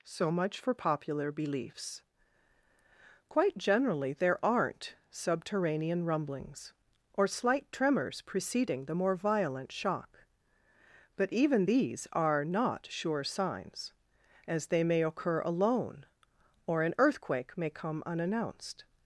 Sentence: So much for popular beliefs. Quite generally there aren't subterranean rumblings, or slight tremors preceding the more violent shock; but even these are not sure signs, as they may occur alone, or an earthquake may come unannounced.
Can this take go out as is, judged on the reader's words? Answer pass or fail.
pass